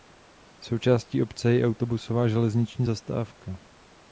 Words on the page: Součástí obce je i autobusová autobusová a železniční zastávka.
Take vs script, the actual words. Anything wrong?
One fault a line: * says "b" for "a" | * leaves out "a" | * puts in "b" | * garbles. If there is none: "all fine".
* leaves out "autobusová"